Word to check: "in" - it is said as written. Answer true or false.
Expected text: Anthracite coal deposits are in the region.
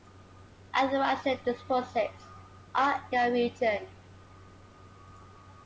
false